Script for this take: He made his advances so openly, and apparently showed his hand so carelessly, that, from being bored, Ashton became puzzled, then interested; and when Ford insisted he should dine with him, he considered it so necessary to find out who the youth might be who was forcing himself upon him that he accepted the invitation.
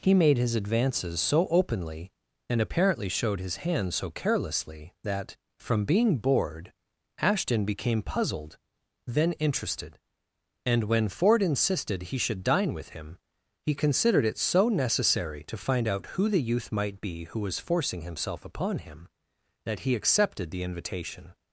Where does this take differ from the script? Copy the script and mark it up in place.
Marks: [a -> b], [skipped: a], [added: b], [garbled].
He made his advances so openly, and apparently showed his hand so carelessly, that, from being bored, Ashton became puzzled, then interested; and when Ford insisted he should dine with him, he considered it so necessary to find out who the youth might be who was forcing himself upon him that he accepted the invitation.